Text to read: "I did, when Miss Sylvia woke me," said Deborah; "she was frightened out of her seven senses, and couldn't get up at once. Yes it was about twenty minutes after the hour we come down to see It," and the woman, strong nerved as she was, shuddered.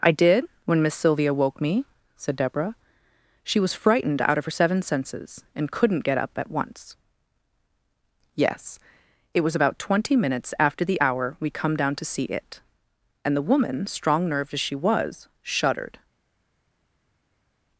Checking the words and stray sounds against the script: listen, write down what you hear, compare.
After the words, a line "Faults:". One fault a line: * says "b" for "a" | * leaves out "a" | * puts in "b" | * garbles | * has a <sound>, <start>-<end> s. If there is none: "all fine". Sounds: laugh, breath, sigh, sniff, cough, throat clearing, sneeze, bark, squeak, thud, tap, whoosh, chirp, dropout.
"I did, when Miss Sylvia woke me," said Deborah; "she was frightened out of her seven senses, and couldn't get up at once. Yes it was about twenty minutes after the hour we come down to see It," and the woman, strong nerved as she was, shuddered.
Faults:
all fine